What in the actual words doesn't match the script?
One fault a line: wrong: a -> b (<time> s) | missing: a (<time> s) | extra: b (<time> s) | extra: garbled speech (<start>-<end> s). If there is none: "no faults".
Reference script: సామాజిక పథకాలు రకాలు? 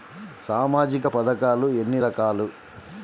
extra: ఎన్ని (1.7 s)